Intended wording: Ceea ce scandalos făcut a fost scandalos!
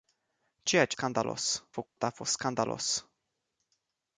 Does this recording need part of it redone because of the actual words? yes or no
no